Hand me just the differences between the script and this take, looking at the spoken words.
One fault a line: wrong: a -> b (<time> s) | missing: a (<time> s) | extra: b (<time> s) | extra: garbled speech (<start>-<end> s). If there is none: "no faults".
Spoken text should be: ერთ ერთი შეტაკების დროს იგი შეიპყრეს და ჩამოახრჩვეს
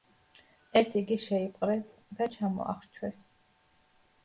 missing: ერთი შეტაკების დროს (0.9 s)